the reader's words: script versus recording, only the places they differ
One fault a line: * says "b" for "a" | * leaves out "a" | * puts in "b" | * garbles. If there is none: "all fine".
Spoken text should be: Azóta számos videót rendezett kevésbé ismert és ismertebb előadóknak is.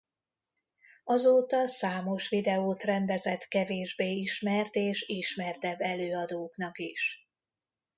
all fine